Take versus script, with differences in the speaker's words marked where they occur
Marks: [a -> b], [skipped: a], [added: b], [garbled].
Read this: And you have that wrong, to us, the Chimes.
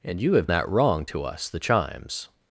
And you have that wrong, to us, the Chimes.